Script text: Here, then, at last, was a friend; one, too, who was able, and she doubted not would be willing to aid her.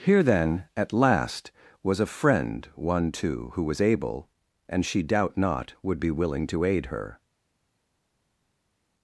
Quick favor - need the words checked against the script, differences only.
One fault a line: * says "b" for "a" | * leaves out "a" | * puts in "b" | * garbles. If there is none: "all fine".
* says "doubt" for "doubted"